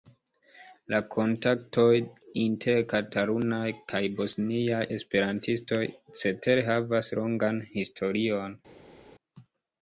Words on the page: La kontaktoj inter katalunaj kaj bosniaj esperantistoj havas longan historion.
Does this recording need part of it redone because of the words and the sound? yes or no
yes